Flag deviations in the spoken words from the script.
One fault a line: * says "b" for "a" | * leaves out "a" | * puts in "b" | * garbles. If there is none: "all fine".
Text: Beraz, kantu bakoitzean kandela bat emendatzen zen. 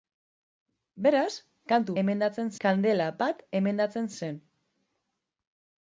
* says "emendatzen" for "bakoitzean"